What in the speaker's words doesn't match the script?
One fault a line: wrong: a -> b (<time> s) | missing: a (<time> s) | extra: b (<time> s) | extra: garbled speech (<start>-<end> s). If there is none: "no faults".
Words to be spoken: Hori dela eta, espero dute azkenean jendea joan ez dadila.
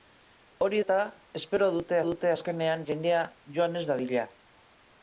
missing: dela (0.8 s)
extra: dute (2.1 s)